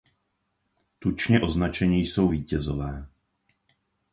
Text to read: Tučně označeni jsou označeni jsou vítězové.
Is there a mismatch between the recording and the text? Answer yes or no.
yes